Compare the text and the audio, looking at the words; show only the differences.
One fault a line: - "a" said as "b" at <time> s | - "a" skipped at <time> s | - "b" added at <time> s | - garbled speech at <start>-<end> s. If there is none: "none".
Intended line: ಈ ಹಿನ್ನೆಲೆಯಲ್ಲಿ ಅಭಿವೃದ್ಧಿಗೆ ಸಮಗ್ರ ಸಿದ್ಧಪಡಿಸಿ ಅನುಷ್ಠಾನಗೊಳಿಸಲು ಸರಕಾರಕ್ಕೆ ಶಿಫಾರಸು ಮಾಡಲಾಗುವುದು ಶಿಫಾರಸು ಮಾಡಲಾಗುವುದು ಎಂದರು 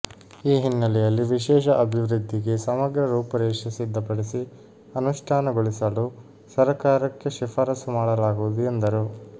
- "ವಿಶೇಷ" added at 1.3 s
- "ರೂಪುರೇಷೆ" added at 3.1 s
- "ಶಿಫಾರಸು ಮಾಡಲಾಗುವುದು" skipped at 8.6 s